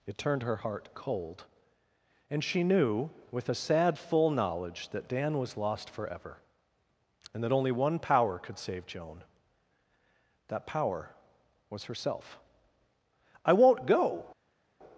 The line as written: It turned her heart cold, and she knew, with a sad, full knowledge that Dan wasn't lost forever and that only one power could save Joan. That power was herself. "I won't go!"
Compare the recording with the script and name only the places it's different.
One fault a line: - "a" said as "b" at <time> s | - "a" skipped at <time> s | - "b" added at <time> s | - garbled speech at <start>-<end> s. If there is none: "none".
- "wasn't" said as "was" at 5.4 s